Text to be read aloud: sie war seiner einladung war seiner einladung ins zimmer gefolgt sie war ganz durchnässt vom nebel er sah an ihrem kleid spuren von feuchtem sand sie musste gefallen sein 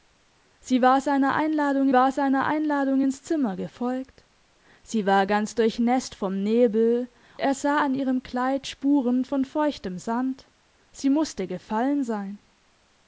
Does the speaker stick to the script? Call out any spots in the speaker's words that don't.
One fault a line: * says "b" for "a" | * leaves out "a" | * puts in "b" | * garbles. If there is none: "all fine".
all fine